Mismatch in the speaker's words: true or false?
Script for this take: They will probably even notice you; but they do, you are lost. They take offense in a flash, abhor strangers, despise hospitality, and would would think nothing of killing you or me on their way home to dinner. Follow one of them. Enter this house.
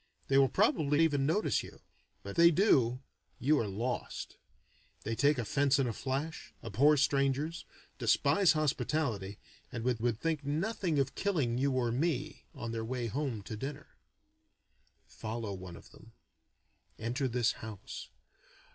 false